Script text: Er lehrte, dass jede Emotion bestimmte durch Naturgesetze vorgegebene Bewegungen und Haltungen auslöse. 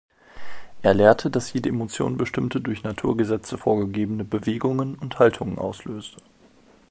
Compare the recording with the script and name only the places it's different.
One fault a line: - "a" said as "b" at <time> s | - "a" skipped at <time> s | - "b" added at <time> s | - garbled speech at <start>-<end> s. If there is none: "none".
none